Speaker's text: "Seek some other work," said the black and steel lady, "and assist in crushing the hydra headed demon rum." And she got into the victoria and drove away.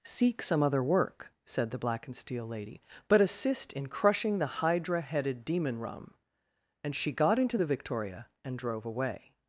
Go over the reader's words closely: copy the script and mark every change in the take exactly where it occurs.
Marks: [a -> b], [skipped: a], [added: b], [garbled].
"Seek some other work," said the black and steel lady, ["and -> but] assist in crushing the hydra headed demon rum." And she got into the victoria and drove away.